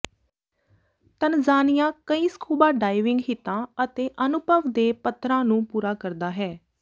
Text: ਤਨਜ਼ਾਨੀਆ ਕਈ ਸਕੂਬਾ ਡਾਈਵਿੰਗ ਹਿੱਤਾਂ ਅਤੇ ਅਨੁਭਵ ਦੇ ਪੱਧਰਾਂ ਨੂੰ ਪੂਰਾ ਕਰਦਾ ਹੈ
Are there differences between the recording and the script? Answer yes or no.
no